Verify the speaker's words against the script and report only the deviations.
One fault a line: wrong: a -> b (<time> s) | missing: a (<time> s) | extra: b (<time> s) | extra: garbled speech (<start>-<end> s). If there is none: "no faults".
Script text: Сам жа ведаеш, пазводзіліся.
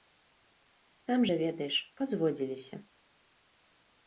no faults